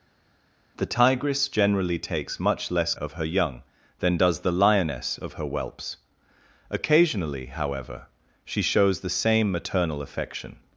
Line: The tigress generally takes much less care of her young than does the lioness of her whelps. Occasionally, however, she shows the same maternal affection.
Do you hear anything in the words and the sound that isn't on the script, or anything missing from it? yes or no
yes